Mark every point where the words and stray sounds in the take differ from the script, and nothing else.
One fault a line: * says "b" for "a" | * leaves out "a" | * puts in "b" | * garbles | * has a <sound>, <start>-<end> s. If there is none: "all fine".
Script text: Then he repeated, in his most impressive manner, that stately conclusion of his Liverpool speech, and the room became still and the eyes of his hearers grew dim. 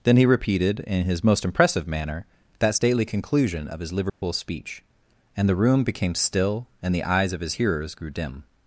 * has a dropout, 4.1-4.2 s